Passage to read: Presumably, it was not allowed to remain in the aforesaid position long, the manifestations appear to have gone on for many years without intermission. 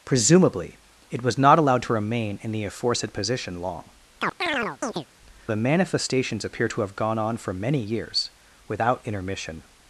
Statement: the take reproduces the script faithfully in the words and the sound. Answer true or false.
false